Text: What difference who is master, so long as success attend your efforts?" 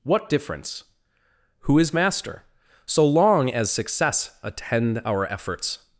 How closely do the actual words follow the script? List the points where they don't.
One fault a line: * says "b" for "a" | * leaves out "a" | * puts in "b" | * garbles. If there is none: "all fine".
* says "our" for "your"